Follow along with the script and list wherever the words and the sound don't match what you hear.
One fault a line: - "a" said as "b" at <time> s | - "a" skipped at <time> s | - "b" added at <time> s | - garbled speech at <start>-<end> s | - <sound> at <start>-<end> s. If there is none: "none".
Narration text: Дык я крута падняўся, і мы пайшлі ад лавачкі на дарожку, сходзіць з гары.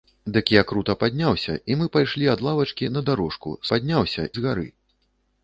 - "сходзіць" said as "падняўся" at 3.7 s